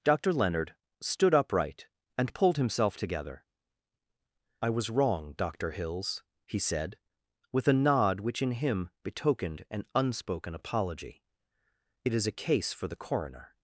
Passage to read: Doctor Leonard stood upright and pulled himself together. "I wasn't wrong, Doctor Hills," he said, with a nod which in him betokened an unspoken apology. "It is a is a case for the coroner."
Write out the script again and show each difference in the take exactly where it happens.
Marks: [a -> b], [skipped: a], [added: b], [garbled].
Doctor Leonard stood upright and pulled himself together. "I [wasn't -> was] wrong, Doctor Hills," he said, with a nod which in him betokened an unspoken apology. "It is a [skipped: is a] case for the coroner."